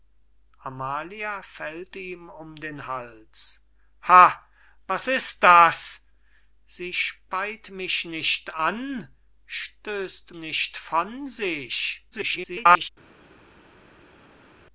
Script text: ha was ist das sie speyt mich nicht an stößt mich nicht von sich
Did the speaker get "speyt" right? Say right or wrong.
right